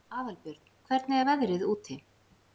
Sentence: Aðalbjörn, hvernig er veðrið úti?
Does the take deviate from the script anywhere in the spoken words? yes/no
no